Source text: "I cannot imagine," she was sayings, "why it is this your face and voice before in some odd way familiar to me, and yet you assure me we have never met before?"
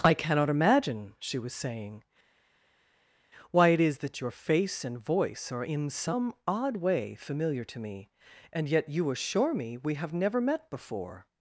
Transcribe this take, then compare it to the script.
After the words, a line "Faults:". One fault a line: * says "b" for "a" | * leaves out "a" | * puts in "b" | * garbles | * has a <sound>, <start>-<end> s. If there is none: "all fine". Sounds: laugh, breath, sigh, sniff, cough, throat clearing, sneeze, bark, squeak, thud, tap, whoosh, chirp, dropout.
"I cannot imagine," she was saying, "why it is that your face and voice are in some odd way familiar to me, and yet you assure me we have never met before?"
Faults:
* says "saying" for "sayings"
* says "that" for "this"
* says "are" for "before"